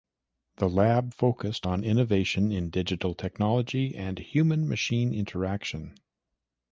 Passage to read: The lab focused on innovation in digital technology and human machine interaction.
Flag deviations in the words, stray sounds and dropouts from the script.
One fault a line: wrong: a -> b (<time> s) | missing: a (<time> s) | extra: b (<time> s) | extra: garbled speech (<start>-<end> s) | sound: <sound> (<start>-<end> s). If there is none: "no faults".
no faults